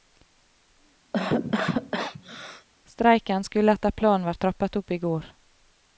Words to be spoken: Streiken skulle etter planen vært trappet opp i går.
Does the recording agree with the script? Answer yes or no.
yes